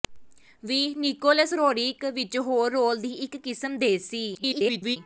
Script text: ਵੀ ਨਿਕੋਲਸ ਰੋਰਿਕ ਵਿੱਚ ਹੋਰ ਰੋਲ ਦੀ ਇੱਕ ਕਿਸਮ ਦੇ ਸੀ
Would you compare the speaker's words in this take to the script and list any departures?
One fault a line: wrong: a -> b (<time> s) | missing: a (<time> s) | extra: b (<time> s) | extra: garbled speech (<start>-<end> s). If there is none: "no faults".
extra: garbled speech (4.3-5.0 s)